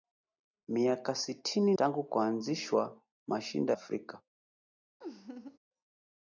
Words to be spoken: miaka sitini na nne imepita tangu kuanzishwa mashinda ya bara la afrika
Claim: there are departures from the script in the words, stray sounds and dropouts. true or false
true